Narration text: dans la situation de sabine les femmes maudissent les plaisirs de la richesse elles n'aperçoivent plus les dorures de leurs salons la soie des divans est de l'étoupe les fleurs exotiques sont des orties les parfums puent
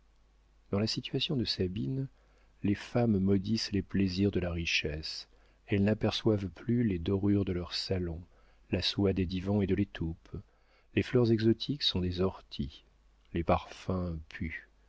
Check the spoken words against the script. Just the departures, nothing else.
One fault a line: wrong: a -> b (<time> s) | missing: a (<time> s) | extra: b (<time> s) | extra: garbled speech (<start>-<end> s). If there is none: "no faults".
no faults